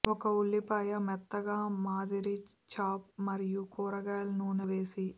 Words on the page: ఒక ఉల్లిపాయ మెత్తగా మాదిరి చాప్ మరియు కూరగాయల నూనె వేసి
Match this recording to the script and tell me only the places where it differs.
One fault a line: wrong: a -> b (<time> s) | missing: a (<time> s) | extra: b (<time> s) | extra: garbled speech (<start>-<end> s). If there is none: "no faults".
no faults